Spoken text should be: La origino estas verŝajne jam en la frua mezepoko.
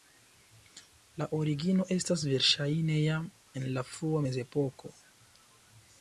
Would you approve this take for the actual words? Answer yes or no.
yes